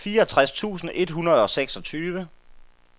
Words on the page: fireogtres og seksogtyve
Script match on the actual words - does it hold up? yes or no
no